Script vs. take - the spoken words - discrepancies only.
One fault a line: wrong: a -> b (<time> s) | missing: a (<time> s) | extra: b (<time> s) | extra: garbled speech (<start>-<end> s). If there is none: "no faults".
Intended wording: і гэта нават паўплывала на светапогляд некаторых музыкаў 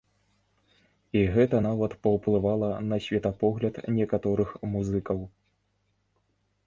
no faults